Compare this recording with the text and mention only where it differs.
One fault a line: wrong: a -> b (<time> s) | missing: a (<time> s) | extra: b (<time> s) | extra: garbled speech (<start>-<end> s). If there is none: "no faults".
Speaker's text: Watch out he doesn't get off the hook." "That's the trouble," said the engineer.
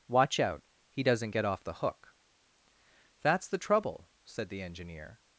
no faults